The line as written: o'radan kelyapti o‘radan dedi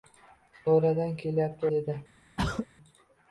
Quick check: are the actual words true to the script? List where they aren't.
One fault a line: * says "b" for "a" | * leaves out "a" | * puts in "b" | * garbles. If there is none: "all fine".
* leaves out "o‘radan"